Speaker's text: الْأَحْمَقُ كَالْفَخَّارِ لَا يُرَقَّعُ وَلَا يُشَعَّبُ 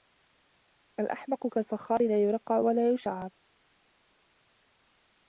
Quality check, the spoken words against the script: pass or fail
pass